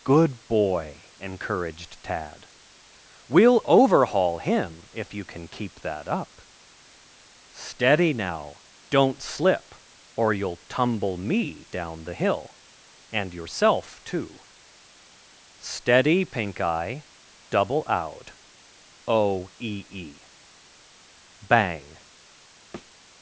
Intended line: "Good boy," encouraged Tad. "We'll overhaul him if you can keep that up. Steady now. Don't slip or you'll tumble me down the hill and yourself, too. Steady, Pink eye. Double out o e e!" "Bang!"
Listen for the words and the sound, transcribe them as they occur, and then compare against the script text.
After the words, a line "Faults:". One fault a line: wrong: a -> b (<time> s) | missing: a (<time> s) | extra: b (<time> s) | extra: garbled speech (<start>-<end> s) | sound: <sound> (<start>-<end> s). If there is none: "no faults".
"Good boy," encouraged Tad. "We'll overhaul him if you can keep that up. Steady now. Don't slip or you'll tumble me down the hill and yourself, too. Steady, Pink eye. Double out o e e!" "Bang!"
Faults:
sound: thud (22.7-22.9 s)